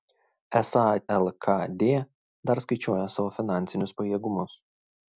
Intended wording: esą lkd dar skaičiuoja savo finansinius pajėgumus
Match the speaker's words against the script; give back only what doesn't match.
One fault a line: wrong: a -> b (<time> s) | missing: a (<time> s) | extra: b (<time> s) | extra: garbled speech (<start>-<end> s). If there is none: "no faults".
no faults